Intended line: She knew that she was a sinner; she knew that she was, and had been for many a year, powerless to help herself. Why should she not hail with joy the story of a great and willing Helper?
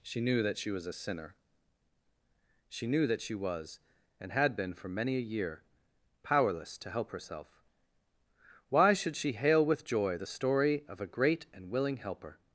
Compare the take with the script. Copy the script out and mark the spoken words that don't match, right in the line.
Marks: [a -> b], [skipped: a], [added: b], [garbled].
She knew that she was a sinner; she knew that she was, and had been for many a year, powerless to help herself. Why should she [skipped: not] hail with joy the story of a great and willing Helper?